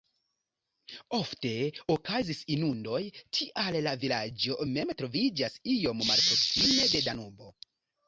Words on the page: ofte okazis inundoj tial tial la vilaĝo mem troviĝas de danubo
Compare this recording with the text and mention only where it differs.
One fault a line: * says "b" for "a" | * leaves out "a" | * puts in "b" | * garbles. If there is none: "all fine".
* leaves out "tial"
* puts in "iom malproksime"